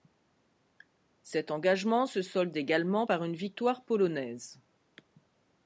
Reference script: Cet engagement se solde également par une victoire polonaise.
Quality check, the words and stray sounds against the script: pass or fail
pass